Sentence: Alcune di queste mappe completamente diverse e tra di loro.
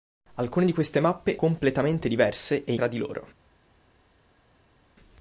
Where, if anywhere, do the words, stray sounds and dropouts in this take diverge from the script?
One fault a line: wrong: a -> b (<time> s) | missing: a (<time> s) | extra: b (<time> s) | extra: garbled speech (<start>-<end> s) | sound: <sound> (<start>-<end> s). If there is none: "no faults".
no faults